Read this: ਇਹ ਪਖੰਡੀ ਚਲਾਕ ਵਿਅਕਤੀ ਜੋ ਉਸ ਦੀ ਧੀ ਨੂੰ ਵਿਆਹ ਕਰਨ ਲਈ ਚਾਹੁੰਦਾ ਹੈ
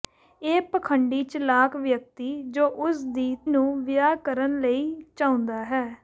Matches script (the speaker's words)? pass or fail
fail